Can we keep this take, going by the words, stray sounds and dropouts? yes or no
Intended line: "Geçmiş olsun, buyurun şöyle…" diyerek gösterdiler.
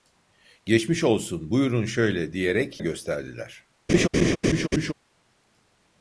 no